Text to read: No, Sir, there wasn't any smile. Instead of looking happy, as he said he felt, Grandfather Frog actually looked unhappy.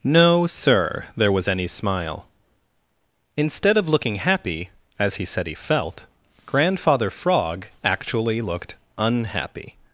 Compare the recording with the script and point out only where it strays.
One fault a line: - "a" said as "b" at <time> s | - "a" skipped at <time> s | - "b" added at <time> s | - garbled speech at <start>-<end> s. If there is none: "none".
- "wasn't" said as "was" at 1.3 s